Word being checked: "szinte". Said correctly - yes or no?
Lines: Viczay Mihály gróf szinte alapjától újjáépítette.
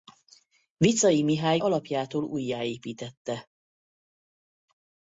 no